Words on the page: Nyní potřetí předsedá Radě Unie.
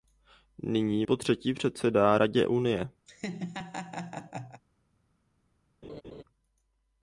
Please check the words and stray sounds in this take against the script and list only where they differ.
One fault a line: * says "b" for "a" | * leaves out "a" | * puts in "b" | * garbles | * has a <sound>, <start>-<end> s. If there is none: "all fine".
* has a laugh, 3.1-4.6 s
* has a laugh, 5.8-6.2 s